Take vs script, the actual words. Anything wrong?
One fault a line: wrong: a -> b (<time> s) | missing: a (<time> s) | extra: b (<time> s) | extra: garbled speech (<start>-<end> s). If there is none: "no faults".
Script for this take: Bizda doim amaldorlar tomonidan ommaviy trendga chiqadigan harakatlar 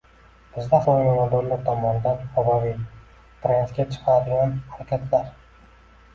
no faults